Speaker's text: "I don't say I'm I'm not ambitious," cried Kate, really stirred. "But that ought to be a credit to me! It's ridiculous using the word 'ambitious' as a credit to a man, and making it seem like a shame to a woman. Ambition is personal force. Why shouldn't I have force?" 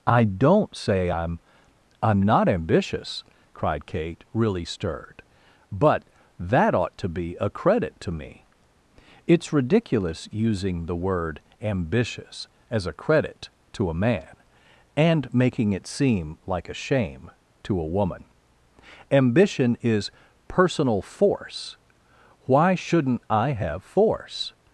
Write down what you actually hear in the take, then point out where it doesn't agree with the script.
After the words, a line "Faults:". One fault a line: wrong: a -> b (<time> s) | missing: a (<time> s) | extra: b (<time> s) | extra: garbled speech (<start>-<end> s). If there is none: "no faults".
"I don't say I'm I'm not ambitious," cried Kate, really stirred. "But that ought to be a credit to me! It's ridiculous using the word 'ambitious' as a credit to a man, and making it seem like a shame to a woman. Ambition is personal force. Why shouldn't I have force?"
Faults:
no faults